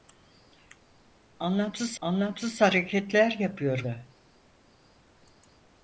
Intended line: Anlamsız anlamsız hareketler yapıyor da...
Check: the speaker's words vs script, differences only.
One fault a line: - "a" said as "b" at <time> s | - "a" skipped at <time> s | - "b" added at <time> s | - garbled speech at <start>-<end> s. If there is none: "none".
none